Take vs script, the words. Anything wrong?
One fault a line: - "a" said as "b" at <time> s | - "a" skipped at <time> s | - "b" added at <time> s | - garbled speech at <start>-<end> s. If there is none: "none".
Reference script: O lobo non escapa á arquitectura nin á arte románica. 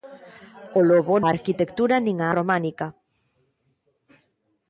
- "non escapa" skipped at 1.1 s
- "arte" skipped at 2.3 s